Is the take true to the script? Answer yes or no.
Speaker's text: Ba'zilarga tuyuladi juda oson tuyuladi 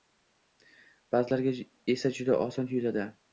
no